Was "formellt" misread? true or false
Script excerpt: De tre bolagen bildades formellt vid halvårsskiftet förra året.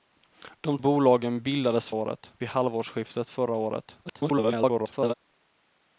true